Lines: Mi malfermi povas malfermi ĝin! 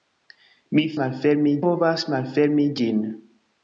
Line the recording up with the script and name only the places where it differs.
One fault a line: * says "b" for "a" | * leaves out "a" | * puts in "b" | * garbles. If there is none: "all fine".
all fine